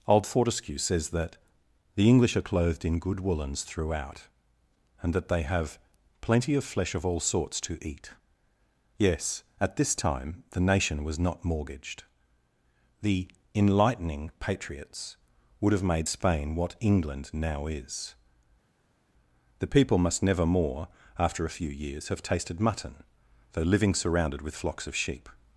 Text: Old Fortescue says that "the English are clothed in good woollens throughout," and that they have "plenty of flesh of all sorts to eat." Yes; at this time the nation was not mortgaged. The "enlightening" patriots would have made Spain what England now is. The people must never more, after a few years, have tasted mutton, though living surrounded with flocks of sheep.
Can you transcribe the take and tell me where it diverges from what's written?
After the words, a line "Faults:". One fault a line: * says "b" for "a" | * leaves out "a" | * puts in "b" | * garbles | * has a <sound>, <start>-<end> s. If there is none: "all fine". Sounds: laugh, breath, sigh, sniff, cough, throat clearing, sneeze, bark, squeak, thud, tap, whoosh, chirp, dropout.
Old Fortescue says that "the English are clothed in good woollens throughout," and that they have "plenty of flesh of all sorts to eat." Yes; at this time the nation was not mortgaged. The "enlightening" patriots would have made Spain what England now is. The people must never more, after a few years, have tasted mutton, though living surrounded with flocks of sheep.
Faults:
all fine